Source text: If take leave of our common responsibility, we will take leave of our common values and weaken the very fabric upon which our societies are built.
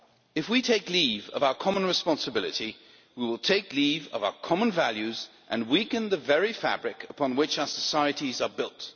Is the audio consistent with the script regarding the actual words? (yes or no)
no